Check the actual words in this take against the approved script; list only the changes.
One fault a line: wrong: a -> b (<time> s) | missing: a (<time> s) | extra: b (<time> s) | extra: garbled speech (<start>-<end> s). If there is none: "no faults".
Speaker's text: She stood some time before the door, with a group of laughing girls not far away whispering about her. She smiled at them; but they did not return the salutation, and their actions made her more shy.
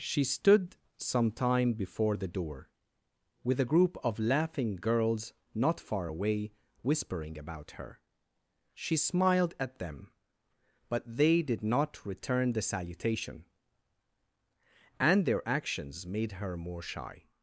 no faults